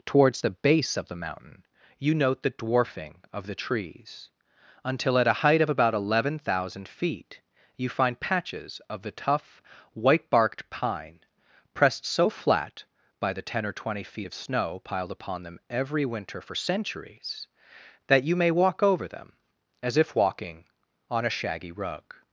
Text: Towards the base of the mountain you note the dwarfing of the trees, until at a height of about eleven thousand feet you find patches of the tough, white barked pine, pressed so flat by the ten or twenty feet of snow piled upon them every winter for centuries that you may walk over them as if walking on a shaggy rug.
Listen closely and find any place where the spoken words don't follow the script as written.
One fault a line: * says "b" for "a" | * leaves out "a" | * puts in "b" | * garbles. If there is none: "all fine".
all fine